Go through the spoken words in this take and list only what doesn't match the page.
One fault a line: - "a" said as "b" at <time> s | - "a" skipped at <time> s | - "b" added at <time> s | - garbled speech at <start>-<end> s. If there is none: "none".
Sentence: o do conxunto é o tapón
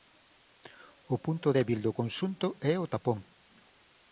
- "punto débil" added at 1.2 s